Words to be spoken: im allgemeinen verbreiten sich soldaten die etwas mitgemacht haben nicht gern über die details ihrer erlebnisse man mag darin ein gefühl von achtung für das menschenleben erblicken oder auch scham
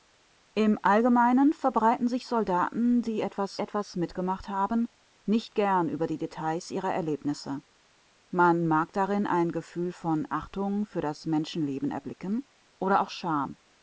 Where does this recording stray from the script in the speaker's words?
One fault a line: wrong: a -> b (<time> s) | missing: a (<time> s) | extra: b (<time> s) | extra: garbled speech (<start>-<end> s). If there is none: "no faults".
extra: etwas (3.6 s)